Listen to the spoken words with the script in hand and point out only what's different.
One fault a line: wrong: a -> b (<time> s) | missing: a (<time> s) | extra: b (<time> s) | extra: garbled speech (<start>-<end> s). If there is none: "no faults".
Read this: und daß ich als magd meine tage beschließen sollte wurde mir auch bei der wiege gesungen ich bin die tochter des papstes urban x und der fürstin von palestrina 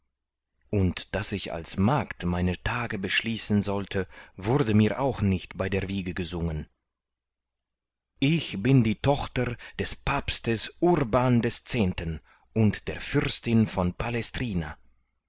extra: nicht (5.2 s)